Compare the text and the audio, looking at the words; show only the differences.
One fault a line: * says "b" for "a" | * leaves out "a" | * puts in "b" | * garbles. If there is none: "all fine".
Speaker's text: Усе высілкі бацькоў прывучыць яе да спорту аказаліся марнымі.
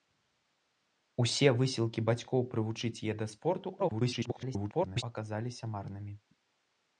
* garbles